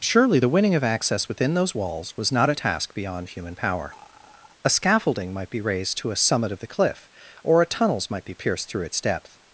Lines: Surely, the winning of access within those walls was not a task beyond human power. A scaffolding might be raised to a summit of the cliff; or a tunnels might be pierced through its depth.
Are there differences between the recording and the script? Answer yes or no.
no